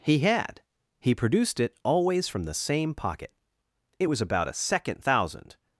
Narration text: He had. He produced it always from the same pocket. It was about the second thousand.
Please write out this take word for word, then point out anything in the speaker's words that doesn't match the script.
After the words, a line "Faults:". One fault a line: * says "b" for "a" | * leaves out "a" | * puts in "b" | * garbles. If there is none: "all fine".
He had. He produced it always from the same pocket. It was about a second thousand.
Faults:
* says "a" for "the"